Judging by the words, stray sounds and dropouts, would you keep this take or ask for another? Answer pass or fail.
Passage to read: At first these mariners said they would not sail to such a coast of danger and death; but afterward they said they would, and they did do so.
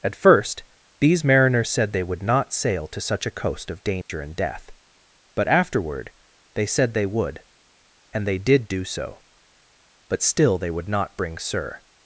fail